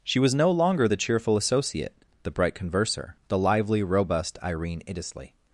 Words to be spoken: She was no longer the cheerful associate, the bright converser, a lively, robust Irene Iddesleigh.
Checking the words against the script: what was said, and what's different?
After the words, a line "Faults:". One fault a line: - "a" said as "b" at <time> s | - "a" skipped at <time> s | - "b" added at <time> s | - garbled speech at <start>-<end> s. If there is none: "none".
She was no longer the cheerful associate, the bright converser, the lively, robust Irene Iddesleigh.
Faults:
- "a" said as "the" at 3.3 s